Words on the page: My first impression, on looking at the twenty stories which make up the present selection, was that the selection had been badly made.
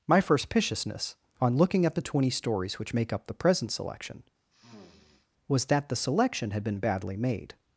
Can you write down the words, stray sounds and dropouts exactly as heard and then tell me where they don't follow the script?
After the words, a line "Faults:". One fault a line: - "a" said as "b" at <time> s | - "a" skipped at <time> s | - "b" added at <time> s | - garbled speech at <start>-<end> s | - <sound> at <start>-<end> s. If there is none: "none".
My first piciousness, on looking at the twenty stories which make up the present selection, was that the selection had been badly made.
Faults:
- "impression" said as "piciousness" at 0.5 s
- sniff at 4.5-5.3 s